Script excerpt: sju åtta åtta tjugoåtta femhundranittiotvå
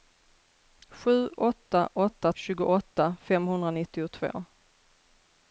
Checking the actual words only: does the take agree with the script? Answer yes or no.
yes